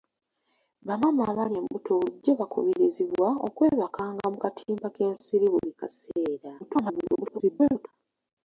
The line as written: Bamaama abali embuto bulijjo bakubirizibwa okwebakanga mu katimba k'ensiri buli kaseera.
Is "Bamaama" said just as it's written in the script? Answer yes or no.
yes